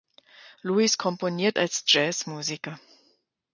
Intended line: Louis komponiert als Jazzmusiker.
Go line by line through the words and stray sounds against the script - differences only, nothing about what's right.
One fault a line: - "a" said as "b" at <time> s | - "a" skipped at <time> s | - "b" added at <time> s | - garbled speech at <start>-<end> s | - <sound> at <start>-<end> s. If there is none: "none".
none